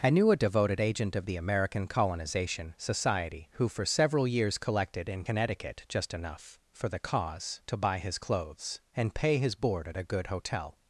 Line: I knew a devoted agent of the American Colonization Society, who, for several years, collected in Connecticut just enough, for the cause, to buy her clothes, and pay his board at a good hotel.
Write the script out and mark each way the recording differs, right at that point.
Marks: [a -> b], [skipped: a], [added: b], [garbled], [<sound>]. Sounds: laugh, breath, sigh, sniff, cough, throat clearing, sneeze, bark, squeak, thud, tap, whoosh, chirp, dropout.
I knew a devoted agent of the American Colonization Society, who, for several years, collected in Connecticut just enough, for the cause, to buy [her -> his] clothes, and pay his board at a good hotel.